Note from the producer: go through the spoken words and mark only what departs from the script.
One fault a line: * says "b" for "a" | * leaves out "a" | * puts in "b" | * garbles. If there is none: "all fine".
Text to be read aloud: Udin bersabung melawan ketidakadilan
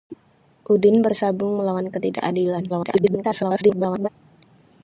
* garbles